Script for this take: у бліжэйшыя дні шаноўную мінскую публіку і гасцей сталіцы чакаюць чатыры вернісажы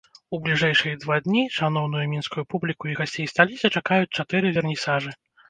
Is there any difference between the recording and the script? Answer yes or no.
yes